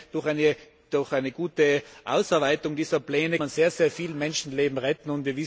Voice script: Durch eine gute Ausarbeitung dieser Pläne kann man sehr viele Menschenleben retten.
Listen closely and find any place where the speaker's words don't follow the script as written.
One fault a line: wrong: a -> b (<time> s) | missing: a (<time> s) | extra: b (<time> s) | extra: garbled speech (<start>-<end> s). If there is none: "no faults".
missing: kann (3.4 s)